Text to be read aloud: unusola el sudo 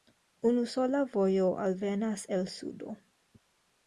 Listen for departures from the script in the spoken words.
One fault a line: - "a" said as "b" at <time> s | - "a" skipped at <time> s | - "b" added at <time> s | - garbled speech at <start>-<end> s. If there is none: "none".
- "vojo alvenas" added at 1.1 s